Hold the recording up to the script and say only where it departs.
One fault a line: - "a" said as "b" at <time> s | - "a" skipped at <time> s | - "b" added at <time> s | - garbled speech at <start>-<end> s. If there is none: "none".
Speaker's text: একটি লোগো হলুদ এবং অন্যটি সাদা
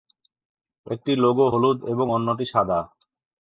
none